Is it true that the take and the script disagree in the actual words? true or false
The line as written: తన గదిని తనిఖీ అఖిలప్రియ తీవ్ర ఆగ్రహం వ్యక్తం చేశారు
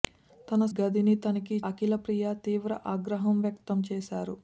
false